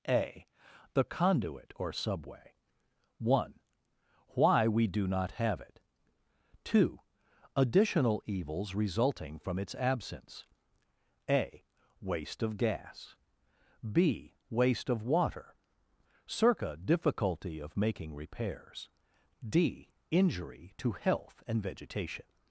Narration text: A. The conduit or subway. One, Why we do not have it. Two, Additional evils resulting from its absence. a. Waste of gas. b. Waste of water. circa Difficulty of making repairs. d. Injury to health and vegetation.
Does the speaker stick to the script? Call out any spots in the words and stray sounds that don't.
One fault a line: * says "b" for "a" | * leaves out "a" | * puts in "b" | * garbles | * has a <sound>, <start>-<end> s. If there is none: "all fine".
all fine